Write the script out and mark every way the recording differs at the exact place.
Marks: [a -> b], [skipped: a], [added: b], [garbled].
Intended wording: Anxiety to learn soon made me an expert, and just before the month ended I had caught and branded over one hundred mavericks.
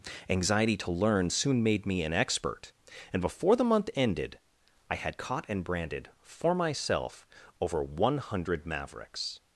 Anxiety to learn soon made me an expert, and [skipped: just] before the month ended I had caught and branded [added: for myself] over one hundred mavericks.